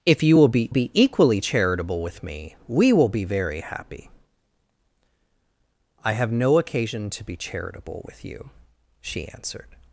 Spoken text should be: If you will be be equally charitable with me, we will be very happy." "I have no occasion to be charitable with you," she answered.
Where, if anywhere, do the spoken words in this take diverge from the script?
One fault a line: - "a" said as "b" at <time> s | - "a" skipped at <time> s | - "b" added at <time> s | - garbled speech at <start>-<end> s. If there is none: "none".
none